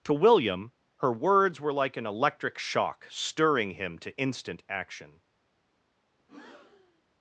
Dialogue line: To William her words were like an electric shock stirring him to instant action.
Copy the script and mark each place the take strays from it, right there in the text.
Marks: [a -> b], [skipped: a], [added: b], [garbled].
To William her words were like an electric shock stirring him to instant action.